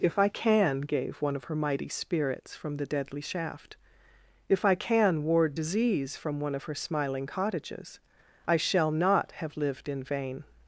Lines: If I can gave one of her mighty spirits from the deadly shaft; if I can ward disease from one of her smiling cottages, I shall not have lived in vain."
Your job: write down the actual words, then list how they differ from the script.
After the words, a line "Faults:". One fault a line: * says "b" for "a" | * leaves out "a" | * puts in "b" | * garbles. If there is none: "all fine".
If I can gave one of her mighty spirits from the deadly shaft; if I can ward disease from one of her smiling cottages, I shall not have lived in vain."
Faults:
all fine